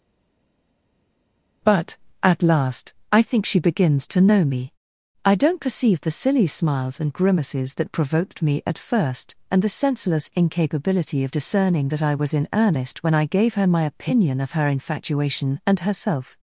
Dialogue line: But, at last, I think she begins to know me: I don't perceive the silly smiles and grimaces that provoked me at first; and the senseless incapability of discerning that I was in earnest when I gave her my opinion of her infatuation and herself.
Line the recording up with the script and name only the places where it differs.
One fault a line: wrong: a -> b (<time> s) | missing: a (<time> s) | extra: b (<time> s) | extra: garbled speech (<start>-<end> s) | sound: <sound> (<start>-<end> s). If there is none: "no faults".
no faults